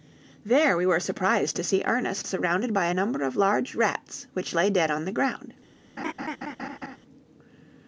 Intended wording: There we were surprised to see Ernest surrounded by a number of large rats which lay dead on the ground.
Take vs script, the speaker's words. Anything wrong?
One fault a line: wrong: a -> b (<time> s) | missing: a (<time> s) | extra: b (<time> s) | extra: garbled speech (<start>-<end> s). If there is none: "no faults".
no faults